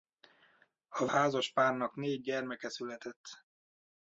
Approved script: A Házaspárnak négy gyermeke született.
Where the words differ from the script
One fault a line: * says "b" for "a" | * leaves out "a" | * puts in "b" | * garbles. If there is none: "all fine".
all fine